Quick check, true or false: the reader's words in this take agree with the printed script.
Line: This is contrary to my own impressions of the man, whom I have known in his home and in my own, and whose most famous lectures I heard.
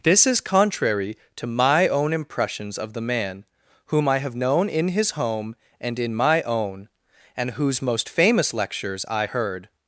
true